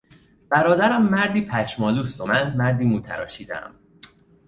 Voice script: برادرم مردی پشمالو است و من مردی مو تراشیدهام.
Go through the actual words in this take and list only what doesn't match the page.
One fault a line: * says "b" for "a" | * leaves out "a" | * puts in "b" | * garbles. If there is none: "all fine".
all fine